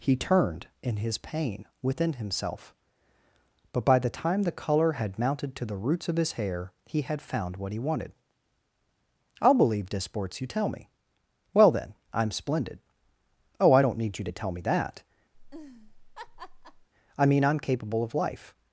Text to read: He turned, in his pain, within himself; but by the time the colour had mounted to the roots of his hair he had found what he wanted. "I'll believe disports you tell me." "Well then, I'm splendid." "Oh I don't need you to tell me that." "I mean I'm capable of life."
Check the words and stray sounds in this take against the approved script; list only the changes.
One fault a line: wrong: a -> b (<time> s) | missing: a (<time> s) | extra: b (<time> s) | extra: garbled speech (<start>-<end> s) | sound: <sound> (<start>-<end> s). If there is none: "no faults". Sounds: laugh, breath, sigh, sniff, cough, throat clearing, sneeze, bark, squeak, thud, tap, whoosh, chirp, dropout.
sound: laugh (15.3-16.9 s)